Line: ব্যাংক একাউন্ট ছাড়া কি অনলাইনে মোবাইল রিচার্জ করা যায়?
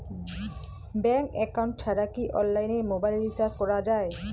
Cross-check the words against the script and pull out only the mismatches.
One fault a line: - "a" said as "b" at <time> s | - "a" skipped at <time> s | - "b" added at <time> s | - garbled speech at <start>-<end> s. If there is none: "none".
none